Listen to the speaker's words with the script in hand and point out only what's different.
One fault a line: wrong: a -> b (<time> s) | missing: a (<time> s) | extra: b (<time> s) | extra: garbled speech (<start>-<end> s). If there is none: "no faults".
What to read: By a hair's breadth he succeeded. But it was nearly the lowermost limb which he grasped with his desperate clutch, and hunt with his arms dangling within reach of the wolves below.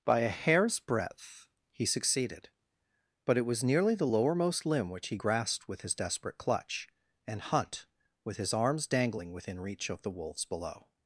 no faults